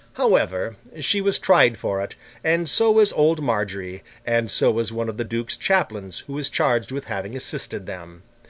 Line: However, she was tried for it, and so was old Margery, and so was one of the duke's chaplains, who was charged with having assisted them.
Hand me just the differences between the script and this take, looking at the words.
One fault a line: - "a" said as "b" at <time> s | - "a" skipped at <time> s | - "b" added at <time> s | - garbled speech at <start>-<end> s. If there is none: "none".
none